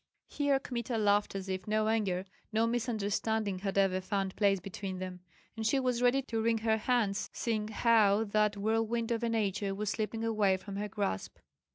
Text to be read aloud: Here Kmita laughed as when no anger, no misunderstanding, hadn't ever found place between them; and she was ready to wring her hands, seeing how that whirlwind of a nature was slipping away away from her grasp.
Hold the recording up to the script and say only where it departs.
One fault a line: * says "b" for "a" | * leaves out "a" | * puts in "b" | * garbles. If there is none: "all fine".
* says "if" for "when"
* says "had" for "hadn't"
* leaves out "away"